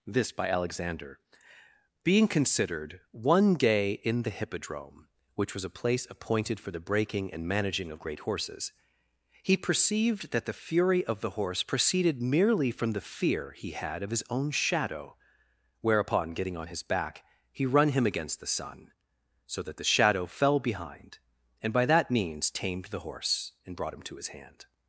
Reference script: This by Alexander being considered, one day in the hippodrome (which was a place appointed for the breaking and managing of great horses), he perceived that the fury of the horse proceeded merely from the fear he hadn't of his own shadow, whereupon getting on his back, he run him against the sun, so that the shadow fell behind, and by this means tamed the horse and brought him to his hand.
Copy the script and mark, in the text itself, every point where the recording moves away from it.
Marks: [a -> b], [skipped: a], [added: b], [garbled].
This by Alexander being considered, one day in the hippodrome (which was a place appointed for the breaking and managing of great horses), he perceived that the fury of the horse proceeded merely from the fear he [hadn't -> had] of his own shadow, whereupon getting on his back, he run him against the sun, so that the shadow fell behind, and by [this -> that] means tamed the horse and brought him to his hand.